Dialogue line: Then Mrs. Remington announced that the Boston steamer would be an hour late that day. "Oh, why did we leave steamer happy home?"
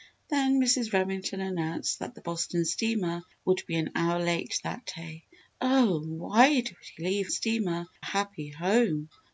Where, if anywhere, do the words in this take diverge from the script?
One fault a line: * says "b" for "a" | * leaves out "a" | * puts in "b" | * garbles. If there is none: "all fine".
all fine